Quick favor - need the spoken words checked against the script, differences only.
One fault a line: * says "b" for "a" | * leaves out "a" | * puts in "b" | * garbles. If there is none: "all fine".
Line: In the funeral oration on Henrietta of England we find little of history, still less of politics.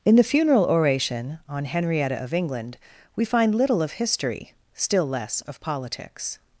all fine